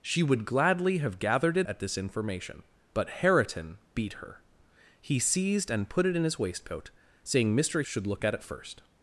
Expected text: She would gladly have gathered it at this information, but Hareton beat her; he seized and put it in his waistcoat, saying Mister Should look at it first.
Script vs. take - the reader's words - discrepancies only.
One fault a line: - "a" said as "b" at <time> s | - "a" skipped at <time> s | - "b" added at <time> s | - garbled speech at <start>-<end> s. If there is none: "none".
none